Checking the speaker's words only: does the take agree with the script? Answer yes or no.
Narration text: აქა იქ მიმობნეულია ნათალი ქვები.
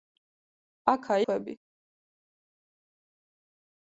no